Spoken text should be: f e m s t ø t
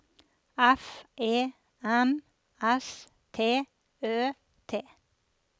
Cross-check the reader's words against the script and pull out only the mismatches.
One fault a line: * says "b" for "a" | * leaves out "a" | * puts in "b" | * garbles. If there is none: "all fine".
all fine